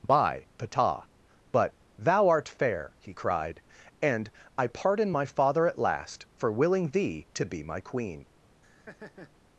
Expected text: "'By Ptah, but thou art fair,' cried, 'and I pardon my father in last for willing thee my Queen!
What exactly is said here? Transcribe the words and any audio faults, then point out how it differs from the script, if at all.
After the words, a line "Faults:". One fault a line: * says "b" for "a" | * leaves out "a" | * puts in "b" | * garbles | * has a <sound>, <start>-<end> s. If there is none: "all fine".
"'By Ptah, but thou art fair,' he cried, 'and I pardon my father at last for willing thee to be my Queen!
Faults:
* puts in "he"
* says "at" for "in"
* puts in "to be"
* has a laugh, 8.6-9.3 s